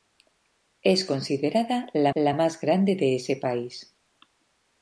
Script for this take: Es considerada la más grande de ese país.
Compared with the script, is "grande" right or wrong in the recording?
right